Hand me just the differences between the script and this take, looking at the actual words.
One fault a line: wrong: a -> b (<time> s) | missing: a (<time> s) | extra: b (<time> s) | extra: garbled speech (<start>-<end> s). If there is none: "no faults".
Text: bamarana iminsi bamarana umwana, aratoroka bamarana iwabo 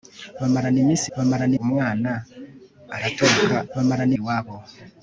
no faults